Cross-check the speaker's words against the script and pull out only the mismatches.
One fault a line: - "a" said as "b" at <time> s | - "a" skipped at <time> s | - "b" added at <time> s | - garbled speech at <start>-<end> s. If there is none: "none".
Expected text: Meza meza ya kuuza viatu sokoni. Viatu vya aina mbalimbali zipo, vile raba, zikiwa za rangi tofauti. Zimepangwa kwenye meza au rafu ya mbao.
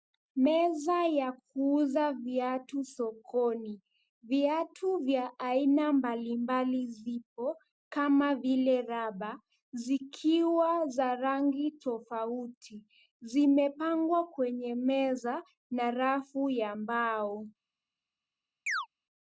- "meza" skipped at 1.0 s
- "kama" added at 7.9 s
- "au" said as "na" at 15.7 s